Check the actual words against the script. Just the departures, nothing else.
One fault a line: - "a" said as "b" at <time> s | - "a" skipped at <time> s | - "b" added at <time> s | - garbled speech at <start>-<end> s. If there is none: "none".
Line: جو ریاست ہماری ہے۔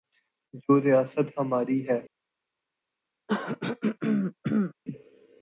none